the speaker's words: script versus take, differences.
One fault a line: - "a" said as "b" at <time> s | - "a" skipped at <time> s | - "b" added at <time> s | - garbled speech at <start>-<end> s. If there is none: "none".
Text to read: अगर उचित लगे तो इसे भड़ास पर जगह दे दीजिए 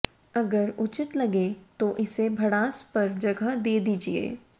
none